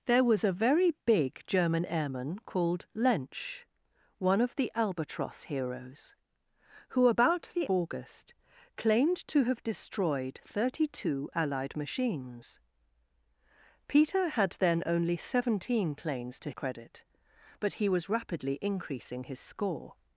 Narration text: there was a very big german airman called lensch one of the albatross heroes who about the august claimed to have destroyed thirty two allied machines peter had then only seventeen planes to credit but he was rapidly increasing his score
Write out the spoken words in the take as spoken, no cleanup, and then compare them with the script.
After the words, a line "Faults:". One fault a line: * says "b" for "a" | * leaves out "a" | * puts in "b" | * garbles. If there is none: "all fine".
there was a very big german airman called lensch one of the albatross heroes who about the august claimed to have destroyed thirty two allied machines peter had then only seventeen planes to credit but he was rapidly increasing his score
Faults:
all fine